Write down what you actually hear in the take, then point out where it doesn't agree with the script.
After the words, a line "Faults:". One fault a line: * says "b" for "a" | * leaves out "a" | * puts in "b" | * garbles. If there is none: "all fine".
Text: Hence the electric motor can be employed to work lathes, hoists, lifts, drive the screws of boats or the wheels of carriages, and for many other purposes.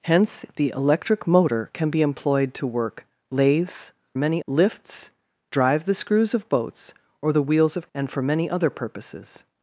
Hence the electric motor can be employed to work lathes, many, lifts, drive the screws of boats or the wheels of and for many other purposes.
Faults:
* says "many" for "hoists"
* leaves out "carriages"